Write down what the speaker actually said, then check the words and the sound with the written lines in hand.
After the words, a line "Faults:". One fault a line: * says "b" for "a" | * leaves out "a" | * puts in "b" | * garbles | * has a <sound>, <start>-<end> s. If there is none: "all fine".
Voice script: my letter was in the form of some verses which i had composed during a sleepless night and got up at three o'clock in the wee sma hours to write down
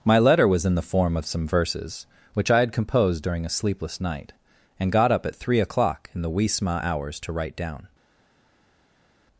my letter was in the form of some verses which i had composed during a sleepless night and got up at three o'clock in the wee sma hours to write down
Faults:
all fine